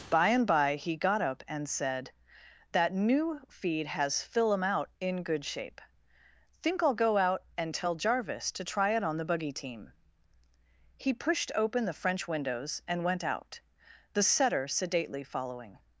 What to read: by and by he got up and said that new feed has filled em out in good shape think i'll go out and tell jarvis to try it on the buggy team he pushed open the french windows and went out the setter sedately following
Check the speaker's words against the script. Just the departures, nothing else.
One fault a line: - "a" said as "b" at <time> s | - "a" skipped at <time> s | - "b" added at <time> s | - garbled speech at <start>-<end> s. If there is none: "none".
- "filled" said as "fill" at 4.2 s